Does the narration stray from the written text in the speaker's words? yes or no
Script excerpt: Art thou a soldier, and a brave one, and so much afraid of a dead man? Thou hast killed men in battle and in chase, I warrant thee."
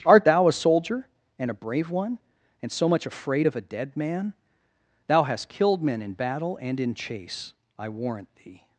no